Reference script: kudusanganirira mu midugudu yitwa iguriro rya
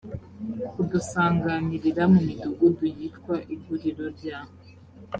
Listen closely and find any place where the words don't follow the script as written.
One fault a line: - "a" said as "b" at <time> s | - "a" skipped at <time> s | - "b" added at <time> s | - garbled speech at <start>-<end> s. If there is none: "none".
none